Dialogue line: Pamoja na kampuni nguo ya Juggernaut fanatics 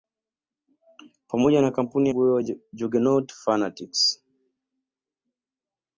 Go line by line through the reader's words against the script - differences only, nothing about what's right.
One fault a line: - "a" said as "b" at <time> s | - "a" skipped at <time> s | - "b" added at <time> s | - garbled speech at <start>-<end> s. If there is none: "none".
none